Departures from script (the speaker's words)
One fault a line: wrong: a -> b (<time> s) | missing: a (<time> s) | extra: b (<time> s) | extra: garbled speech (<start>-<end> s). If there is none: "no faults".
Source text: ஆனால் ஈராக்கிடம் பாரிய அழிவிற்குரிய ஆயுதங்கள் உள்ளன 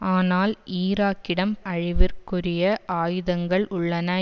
missing: பாரிய (1.6 s)